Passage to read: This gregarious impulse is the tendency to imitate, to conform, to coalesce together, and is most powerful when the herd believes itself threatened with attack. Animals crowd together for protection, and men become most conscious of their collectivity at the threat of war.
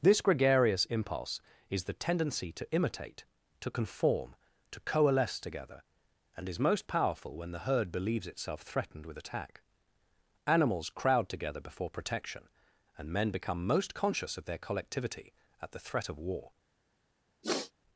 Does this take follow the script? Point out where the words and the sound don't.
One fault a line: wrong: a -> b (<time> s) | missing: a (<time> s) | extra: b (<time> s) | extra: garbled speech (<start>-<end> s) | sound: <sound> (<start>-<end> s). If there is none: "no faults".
wrong: for -> before (11.6 s)
sound: sniff (17.4-17.7 s)